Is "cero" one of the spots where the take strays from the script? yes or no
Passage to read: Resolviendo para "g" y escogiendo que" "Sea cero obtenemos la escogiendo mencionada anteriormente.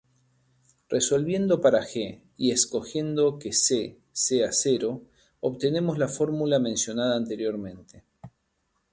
no